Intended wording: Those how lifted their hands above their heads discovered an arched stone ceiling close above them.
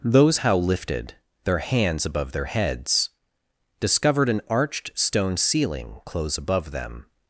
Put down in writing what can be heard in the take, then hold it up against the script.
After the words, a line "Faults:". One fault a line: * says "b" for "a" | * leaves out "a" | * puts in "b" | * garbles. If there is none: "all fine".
Those how lifted their hands above their heads discovered an arched stone ceiling close above them.
Faults:
all fine